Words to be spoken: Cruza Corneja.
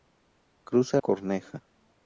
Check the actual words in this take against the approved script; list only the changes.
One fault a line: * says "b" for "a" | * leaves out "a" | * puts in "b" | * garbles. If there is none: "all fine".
all fine